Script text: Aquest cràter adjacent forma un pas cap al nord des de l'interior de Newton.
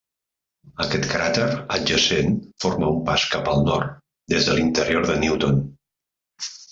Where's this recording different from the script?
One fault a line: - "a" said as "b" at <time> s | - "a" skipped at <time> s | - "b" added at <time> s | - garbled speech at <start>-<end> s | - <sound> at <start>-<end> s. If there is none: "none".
none